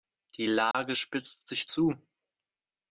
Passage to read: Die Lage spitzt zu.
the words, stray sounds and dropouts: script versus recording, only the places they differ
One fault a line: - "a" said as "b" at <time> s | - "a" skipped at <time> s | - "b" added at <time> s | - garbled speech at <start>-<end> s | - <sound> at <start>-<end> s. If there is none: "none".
- dropout at 0.7-0.7 s
- "sich" added at 1.5 s